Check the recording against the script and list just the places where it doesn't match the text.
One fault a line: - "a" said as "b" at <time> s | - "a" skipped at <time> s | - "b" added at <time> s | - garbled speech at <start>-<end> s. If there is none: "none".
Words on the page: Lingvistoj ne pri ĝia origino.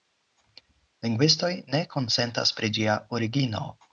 - "konsentas" added at 1.9 s